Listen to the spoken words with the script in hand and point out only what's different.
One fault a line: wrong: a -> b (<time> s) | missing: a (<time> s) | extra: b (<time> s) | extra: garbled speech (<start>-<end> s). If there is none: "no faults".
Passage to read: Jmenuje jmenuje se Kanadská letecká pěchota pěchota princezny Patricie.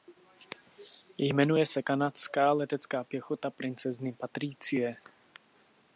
missing: jmenuje (1.6 s)
missing: pěchota (3.5 s)